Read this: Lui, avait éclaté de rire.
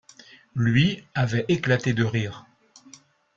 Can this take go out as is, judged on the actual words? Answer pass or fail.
pass